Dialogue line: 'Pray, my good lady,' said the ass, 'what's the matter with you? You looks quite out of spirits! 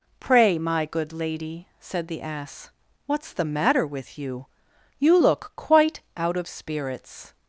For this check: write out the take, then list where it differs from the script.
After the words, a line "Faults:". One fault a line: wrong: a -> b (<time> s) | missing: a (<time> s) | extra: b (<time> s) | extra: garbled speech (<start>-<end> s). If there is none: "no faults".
'Pray, my good lady,' said the ass, 'what's the matter with you? You look quite out of spirits!
Faults:
wrong: looks -> look (5.2 s)